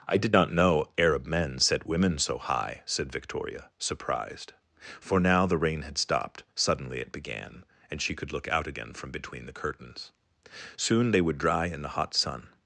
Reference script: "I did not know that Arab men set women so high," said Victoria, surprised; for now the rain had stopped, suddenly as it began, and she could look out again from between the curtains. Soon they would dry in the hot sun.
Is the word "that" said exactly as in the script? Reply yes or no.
no